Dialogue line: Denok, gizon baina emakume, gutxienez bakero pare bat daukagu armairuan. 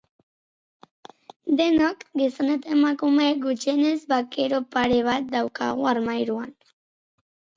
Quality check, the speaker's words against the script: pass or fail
fail